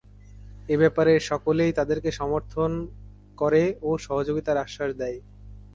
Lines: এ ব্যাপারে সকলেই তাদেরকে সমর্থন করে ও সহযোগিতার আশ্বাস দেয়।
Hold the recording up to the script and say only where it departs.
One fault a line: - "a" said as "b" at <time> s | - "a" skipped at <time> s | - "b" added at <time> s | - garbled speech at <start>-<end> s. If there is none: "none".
none